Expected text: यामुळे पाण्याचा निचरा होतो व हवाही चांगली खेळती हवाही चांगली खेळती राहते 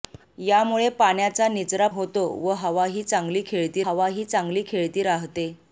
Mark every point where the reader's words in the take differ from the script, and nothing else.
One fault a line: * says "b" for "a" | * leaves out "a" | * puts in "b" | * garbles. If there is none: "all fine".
all fine